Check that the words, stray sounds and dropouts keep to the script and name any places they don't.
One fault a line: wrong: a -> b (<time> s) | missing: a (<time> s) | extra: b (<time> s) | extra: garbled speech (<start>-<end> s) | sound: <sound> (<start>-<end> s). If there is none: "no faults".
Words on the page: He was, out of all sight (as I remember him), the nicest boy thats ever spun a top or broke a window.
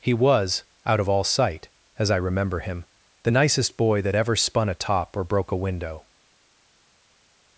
wrong: thats -> that (4.0 s)